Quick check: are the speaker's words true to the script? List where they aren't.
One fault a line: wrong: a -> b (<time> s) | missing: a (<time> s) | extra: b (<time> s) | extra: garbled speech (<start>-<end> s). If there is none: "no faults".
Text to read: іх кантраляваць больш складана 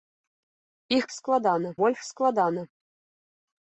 wrong: кантраляваць -> складана (1.2 s)